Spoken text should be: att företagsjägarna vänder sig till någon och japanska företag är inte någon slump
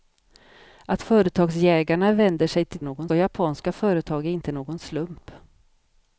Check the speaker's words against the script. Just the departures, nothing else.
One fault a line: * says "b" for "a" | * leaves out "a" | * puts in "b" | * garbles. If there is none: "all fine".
all fine